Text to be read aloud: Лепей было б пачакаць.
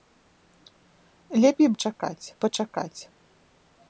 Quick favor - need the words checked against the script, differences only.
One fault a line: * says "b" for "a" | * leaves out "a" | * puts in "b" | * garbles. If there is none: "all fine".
* says "пачакаць" for "было"